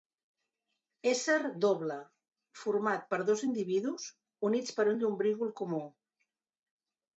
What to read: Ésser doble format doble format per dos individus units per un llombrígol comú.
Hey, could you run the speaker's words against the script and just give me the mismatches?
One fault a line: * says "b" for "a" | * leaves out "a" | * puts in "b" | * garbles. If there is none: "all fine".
* leaves out "doble format"